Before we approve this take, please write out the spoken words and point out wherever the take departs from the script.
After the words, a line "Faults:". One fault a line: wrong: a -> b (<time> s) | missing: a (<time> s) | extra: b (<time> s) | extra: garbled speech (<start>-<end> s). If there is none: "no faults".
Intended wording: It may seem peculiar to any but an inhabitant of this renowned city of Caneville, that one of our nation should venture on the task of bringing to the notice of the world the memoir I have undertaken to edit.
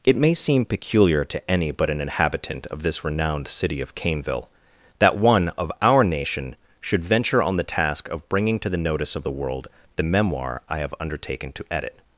It may seem peculiar to any but an inhabitant of this renowned city of Caneville, that one of our nation should venture on the task of bringing to the notice of the world the memoir I have undertaken to edit.
Faults:
no faults